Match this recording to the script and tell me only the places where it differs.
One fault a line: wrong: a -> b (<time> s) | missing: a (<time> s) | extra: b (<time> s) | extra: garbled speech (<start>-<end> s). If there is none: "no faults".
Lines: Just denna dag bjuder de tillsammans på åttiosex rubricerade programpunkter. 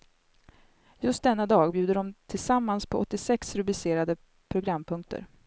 no faults